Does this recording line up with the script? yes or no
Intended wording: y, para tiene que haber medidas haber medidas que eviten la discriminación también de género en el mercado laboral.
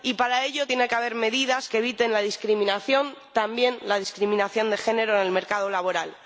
no